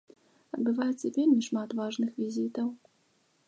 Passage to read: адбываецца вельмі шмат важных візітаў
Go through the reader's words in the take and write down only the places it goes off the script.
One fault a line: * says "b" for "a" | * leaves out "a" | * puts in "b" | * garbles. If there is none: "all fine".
all fine